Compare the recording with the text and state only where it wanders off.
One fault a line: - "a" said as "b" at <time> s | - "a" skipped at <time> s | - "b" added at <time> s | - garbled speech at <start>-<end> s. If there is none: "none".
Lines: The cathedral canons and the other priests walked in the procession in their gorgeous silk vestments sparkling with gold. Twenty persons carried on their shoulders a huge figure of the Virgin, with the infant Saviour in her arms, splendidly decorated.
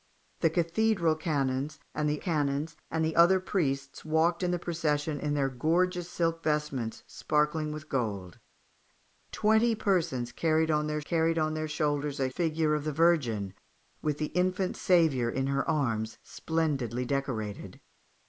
- "canons and the" added at 2.2 s
- "carried on their" added at 11.0 s
- "huge" skipped at 12.3 s